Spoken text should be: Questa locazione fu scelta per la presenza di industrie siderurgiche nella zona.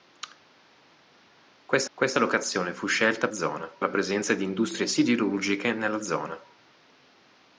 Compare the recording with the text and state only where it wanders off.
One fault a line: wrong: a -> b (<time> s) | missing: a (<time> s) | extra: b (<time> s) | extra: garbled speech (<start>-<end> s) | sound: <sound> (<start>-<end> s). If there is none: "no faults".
extra: questa (1.9 s)
wrong: per -> zona (3.3 s)